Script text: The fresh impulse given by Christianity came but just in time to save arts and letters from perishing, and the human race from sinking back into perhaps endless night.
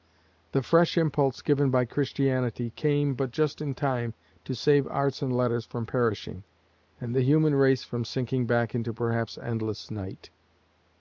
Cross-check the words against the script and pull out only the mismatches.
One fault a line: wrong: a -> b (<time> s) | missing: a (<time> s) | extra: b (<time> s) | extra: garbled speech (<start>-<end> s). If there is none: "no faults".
no faults